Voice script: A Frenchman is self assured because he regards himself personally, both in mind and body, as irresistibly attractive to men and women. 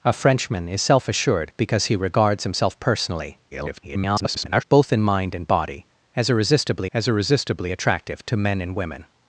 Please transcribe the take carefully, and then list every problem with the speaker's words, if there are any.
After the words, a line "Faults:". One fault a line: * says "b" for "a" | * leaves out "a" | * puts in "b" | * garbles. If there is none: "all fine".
A Frenchman is self assured because he regards himself personally, [garbled] both in mind and body, as irresistibly as irresistibly attractive to men and women.
Faults:
* garbles
* puts in "as irresistibly"